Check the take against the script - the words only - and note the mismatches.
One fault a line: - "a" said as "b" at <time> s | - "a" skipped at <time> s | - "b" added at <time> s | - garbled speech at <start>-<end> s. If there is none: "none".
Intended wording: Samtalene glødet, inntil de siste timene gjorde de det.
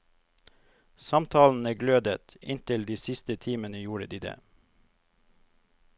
none